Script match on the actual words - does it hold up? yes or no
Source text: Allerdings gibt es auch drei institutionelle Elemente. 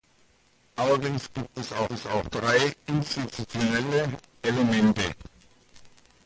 no